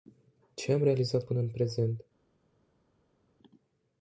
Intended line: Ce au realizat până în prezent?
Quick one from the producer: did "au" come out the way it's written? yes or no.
no